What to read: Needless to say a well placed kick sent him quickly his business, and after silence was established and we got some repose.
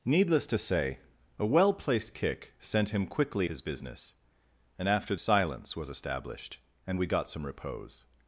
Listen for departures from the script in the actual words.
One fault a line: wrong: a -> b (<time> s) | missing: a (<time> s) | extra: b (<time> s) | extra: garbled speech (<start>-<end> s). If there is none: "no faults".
no faults